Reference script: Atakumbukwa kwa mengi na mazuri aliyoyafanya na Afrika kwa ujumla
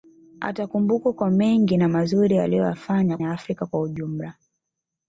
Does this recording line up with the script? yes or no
yes